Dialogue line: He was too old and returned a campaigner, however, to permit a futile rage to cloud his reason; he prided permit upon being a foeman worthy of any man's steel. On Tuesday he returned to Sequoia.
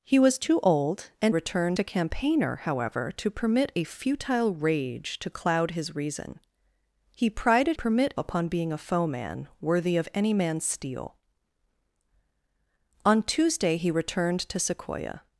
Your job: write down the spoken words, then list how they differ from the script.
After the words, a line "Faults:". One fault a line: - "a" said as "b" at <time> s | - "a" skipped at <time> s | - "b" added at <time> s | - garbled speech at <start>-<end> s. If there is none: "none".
He was too old and returned a campaigner, however, to permit a futile rage to cloud his reason; he prided permit upon being a foeman worthy of any man's steel. On Tuesday he returned to Sequoia.
Faults:
none